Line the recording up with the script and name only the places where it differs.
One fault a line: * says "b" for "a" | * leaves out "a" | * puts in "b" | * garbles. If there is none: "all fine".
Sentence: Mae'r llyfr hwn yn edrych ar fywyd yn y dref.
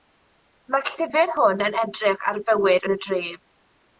all fine